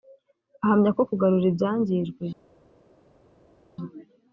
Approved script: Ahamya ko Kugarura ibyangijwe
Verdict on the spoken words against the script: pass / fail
pass